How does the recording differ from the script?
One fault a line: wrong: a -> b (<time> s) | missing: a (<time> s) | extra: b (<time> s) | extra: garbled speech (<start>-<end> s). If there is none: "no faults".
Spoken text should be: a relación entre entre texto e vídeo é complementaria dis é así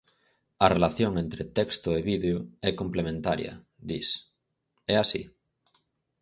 missing: entre (1.4 s)